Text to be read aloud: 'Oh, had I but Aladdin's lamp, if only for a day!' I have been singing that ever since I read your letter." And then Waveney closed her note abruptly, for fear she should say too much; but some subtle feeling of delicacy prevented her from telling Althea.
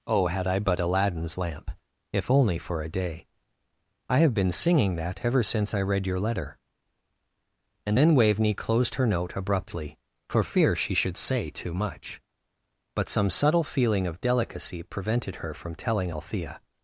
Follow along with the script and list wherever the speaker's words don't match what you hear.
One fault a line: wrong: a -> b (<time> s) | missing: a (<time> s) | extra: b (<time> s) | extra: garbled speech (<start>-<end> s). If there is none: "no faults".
no faults